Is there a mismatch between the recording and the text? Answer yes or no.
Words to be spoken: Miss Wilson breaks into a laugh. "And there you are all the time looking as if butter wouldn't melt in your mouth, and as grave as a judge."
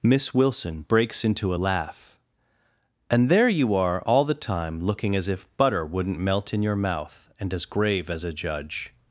no